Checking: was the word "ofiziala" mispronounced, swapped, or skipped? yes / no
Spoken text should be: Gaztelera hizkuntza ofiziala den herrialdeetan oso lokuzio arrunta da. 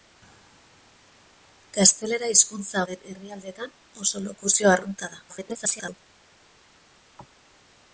yes